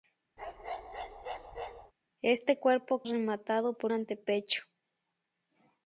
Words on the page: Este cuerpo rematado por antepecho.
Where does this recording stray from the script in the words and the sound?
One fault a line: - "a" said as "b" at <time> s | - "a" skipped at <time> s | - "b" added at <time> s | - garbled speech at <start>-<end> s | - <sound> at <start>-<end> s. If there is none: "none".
- bark at 0.4-1.9 s